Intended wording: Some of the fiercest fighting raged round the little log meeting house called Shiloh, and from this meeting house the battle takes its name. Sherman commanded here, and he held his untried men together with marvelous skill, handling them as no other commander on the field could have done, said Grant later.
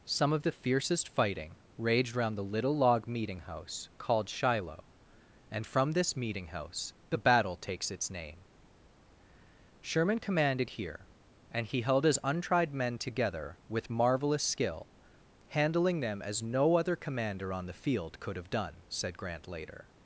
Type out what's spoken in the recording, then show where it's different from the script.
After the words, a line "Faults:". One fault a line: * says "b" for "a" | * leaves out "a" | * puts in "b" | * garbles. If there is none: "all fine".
Some of the fiercest fighting raged round the little log meeting house called Shiloh, and from this meeting house the battle takes its name. Sherman commanded here, and he held his untried men together with marvelous skill, handling them as no other commander on the field could have done, said Grant later.
Faults:
all fine